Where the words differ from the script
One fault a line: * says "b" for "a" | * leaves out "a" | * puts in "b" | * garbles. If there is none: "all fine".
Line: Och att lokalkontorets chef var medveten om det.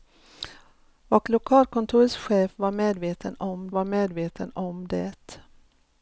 * leaves out "att"
* puts in "var medveten om"